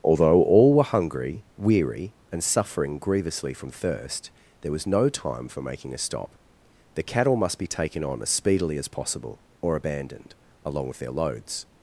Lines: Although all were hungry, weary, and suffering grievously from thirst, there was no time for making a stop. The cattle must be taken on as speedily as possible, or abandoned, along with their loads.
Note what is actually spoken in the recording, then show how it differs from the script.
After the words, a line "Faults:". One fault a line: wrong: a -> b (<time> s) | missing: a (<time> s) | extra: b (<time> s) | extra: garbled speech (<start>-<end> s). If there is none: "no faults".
Although all were hungry, weary, and suffering grievously from thirst, there was no time for making a stop. The cattle must be taken on as speedily as possible, or abandoned, along with their loads.
Faults:
no faults